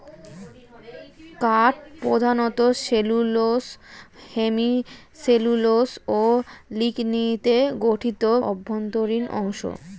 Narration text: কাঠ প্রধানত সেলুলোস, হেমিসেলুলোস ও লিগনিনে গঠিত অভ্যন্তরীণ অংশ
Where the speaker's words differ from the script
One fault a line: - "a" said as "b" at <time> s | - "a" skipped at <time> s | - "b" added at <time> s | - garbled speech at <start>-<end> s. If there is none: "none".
none